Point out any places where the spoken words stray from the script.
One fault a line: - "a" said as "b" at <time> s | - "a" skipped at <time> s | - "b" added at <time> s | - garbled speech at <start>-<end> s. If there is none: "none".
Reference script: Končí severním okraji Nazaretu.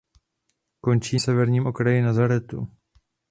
none